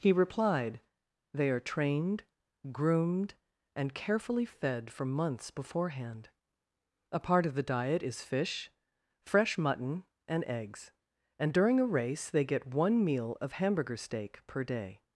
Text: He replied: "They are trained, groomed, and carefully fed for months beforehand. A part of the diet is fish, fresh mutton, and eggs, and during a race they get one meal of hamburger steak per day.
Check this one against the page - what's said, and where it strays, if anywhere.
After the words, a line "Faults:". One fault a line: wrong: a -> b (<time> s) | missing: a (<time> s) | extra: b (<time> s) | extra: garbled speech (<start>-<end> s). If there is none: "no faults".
He replied: "They are trained, groomed, and carefully fed for months beforehand. A part of the diet is fish, fresh mutton, and eggs, and during a race they get one meal of hamburger steak per day.
Faults:
no faults